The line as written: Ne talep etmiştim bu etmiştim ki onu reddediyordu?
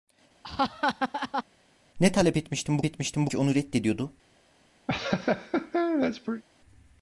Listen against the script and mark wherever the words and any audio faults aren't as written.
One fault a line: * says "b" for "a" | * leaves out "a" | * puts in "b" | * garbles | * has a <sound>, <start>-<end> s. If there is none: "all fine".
* has a laugh, 0.4-1.4 s
* has a laugh, 4.9-6.4 s